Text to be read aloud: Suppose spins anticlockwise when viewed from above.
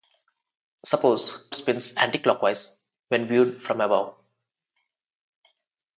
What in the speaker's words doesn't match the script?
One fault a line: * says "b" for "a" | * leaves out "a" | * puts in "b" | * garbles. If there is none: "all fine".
all fine